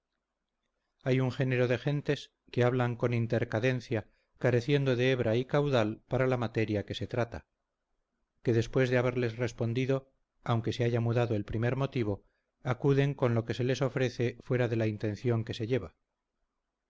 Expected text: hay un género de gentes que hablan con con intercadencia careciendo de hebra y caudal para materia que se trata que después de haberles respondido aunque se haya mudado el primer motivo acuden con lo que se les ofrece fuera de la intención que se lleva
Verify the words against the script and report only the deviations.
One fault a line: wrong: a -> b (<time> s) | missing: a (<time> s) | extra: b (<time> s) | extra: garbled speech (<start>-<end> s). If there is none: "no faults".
missing: con (3.1 s)
extra: la (6.2 s)